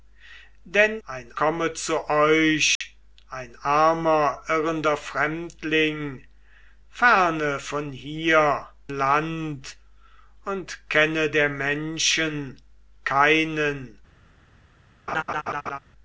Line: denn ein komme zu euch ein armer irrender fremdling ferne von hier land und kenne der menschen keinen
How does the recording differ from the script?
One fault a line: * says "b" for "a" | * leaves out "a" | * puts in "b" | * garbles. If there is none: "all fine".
all fine